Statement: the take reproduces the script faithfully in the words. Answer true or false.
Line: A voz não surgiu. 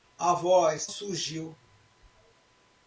false